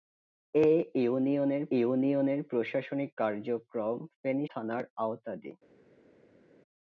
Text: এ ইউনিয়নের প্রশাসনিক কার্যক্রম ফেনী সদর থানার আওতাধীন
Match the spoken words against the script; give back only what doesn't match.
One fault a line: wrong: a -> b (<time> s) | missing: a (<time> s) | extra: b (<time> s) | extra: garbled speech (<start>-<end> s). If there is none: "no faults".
extra: ইউনিয়নের (1.7 s)
missing: সদর (4.5 s)